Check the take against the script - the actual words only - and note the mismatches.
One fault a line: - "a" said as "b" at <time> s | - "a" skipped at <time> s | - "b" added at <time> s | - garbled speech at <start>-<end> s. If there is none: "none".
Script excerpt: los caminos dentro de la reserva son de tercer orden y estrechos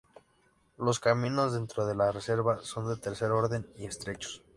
none